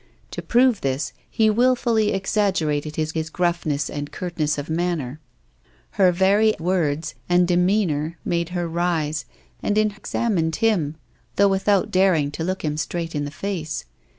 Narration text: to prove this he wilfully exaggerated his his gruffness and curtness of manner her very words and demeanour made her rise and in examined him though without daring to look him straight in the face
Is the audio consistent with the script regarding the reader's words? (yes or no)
yes